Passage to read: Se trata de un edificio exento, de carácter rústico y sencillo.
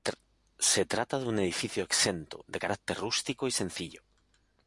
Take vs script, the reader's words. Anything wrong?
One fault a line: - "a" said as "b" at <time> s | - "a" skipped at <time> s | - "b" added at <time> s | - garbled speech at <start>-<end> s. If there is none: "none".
none